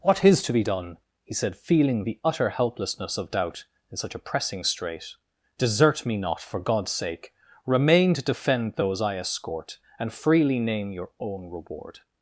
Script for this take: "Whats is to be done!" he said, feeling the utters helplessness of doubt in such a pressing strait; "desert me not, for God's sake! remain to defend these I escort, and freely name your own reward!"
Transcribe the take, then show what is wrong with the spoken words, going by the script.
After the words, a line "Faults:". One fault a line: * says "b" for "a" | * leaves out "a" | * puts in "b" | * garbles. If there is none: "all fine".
"What is to be done!" he said, feeling the utter helplessness of doubt in such a pressing strait; "desert me not, for God's sake! remain to defend those I escort, and freely name your own reward!"
Faults:
* says "What" for "Whats"
* says "utter" for "utters"
* says "those" for "these"